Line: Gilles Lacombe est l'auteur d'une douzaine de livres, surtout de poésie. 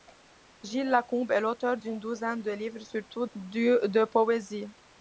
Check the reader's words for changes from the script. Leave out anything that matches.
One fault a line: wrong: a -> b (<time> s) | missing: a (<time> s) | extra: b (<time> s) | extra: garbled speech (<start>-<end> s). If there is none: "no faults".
no faults